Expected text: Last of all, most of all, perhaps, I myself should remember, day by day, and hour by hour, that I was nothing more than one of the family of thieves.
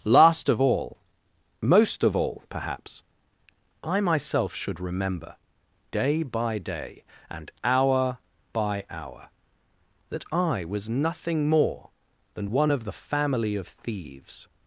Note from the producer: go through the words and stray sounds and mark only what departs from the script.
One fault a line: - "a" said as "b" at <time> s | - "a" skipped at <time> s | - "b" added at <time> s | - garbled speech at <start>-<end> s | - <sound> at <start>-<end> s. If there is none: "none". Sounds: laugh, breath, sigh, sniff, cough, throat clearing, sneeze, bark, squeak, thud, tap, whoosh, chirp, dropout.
none